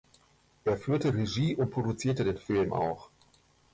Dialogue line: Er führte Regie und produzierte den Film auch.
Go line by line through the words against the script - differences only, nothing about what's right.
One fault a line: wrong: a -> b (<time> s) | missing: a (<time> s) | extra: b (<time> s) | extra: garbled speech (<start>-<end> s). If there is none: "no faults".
no faults